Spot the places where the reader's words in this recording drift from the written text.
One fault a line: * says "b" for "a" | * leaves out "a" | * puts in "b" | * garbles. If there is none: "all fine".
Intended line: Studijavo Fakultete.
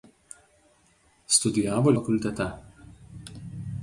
all fine